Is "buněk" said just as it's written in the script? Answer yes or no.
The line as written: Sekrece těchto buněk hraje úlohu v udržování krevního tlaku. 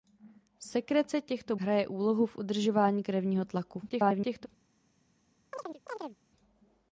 no